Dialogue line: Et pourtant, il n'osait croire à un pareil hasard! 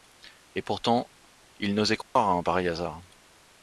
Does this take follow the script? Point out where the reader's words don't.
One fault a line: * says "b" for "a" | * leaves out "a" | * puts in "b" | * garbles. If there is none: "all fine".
all fine